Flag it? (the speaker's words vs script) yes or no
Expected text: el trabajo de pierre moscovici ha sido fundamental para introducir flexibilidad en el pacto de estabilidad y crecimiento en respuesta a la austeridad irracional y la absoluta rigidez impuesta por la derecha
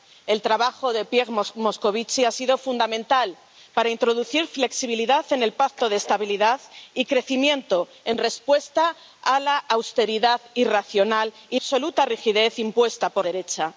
yes